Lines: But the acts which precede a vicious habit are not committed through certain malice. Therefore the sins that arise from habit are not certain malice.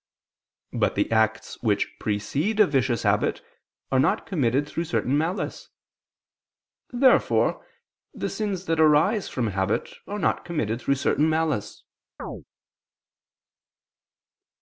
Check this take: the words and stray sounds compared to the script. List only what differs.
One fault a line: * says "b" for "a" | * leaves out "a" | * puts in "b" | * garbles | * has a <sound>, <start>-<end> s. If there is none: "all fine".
* puts in "committed through"
* has a chirp, 12.2-12.4 s